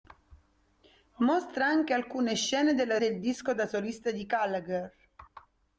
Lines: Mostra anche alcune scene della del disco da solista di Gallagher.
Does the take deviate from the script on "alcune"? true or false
false